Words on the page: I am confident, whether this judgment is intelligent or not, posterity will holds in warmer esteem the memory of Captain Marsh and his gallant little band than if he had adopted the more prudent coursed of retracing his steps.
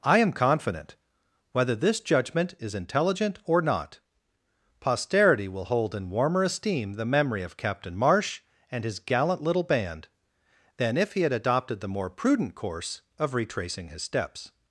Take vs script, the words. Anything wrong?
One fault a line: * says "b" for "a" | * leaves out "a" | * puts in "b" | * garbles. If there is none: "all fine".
* says "hold" for "holds"
* says "course" for "coursed"